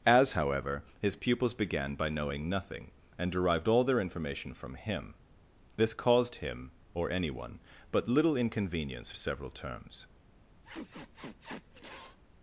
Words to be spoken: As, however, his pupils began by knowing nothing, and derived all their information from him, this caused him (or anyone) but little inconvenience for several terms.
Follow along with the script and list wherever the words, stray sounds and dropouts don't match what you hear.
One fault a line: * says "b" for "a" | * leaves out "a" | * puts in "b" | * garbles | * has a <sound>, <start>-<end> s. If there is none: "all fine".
* leaves out "for"
* has a sniff, 10.6-12.2 s